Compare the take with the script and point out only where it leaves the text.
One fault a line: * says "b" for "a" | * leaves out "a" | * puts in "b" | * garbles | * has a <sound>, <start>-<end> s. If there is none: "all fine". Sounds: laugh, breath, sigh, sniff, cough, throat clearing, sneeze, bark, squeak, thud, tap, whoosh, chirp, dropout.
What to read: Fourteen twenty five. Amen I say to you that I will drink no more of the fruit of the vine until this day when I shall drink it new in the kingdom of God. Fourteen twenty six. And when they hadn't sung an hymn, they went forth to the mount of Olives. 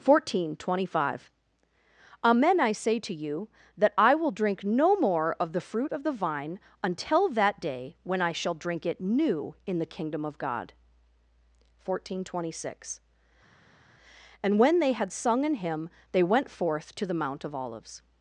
* says "that" for "this"
* says "had" for "hadn't"